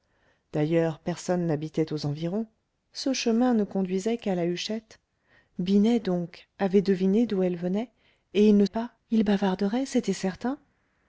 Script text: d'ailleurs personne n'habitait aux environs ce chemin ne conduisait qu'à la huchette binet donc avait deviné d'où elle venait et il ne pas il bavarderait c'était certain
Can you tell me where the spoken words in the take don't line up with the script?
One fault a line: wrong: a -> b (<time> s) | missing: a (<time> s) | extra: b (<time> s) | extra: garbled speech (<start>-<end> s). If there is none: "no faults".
no faults